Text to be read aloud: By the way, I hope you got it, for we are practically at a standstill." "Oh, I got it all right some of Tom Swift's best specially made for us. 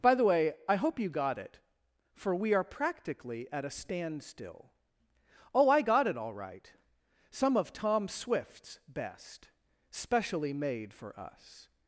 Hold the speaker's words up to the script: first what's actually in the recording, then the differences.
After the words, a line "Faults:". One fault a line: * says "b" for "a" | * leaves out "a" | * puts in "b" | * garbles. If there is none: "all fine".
By the way, I hope you got it, for we are practically at a standstill." "Oh, I got it all right some of Tom Swift's best specially made for us.
Faults:
all fine